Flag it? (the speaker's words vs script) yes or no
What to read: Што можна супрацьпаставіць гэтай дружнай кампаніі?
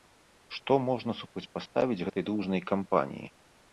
no